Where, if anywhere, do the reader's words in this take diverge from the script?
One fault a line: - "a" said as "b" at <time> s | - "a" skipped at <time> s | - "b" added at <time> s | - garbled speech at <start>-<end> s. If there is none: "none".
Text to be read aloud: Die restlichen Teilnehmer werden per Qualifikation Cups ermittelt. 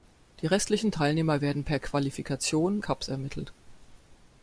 none